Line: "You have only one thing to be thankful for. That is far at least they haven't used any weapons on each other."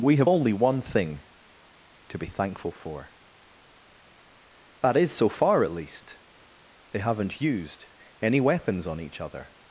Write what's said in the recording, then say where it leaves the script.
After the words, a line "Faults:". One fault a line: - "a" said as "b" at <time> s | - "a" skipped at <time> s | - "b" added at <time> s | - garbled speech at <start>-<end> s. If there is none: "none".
"We have only one thing to be thankful for. That is so far at least they haven't used any weapons on each other."
Faults:
- "You" said as "We" at 0.0 s
- "so" added at 5.1 s